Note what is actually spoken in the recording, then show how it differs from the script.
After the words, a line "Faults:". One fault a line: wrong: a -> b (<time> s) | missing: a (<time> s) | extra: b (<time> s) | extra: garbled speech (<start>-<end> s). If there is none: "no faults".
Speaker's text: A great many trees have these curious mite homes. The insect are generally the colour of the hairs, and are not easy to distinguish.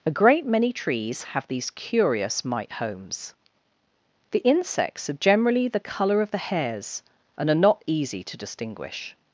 A great many trees have these curious mite homes. The insects are generally the colour of the hairs, and are not easy to distinguish.
Faults:
wrong: insect -> insects (4.4 s)